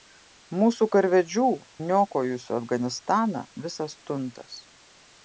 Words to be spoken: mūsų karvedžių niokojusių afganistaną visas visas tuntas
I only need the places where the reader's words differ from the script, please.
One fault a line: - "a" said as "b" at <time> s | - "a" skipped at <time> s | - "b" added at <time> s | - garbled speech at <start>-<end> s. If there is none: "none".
- "visas" skipped at 4.0 s